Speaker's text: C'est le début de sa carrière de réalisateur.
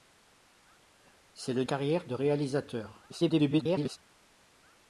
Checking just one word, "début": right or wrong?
wrong